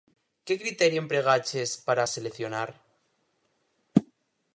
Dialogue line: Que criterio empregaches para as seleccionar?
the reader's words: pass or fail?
pass